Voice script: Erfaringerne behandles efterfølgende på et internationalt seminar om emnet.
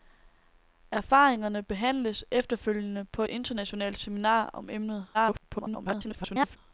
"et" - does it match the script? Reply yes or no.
no